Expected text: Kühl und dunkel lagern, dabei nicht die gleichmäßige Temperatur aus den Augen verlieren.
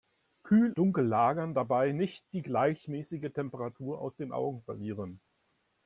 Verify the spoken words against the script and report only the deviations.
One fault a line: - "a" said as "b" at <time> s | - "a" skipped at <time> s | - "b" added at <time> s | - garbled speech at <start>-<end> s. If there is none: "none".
- "und" skipped at 0.8 s